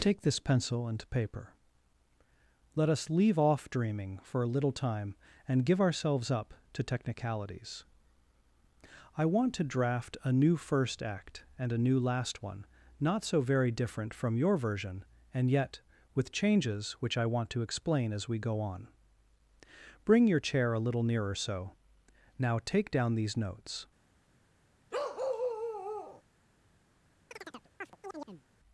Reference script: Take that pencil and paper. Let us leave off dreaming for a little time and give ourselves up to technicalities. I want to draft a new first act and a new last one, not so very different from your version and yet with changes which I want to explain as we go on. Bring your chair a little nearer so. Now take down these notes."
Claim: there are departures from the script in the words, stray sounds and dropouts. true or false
true